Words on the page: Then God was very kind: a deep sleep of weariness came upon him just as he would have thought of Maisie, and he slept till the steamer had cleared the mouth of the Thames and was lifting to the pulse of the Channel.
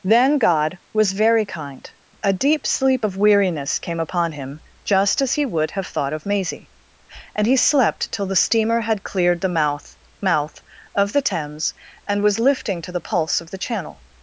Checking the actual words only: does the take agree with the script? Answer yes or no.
no